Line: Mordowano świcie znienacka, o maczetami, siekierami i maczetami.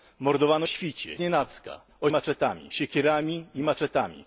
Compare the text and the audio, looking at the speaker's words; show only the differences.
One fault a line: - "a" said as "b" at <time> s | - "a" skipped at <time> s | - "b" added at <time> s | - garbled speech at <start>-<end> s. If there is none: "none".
none